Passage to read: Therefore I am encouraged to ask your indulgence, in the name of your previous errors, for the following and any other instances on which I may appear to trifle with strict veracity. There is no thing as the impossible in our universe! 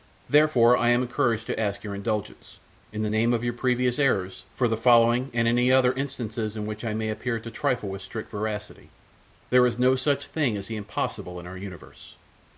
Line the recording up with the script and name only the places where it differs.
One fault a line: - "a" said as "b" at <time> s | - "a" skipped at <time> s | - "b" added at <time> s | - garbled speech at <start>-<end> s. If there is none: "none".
- "on" said as "in" at 6.5 s
- "such" added at 9.9 s